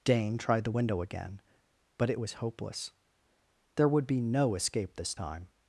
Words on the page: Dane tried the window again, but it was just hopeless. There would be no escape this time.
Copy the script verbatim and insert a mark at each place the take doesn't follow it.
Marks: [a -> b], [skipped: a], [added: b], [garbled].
Dane tried the window again, but it was [skipped: just] hopeless. There would be no escape this time.